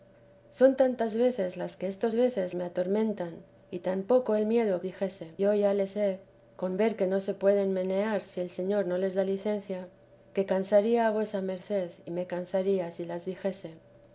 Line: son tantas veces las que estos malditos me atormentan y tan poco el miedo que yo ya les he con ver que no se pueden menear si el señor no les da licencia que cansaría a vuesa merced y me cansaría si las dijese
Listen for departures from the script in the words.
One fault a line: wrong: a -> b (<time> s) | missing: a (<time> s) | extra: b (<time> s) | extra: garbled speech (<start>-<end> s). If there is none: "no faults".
wrong: malditos -> veces (2.1 s)
wrong: que -> dijese (4.8 s)